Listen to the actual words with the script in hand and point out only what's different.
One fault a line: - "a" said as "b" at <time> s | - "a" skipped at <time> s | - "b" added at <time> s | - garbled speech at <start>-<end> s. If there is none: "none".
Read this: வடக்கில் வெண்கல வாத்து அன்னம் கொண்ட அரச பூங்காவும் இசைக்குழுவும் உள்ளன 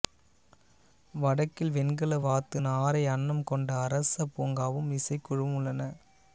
- "நாரை" added at 2.6 s